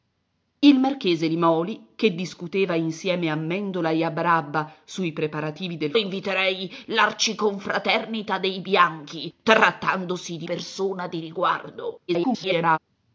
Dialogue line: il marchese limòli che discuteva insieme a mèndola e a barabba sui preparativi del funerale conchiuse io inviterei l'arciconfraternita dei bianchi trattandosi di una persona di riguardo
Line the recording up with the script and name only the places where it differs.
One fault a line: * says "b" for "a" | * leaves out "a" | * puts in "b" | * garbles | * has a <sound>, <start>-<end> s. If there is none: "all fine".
* leaves out "funerale conchiuse io"
* leaves out "una"
* garbles